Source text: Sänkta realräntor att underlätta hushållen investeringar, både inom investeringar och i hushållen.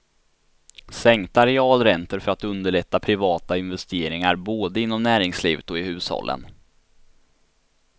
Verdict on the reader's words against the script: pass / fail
fail